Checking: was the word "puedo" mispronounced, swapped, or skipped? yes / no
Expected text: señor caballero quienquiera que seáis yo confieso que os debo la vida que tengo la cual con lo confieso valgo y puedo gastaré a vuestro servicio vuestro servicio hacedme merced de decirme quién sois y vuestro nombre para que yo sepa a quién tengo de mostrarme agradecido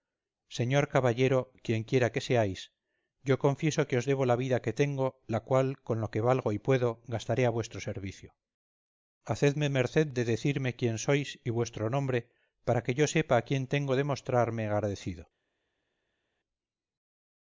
no